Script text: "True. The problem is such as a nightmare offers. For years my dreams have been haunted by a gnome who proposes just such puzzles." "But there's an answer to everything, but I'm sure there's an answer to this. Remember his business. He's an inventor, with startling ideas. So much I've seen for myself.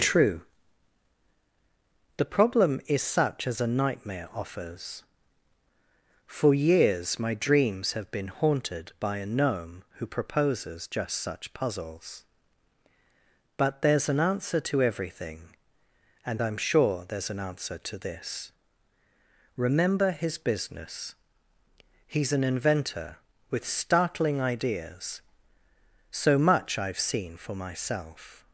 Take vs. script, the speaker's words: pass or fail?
fail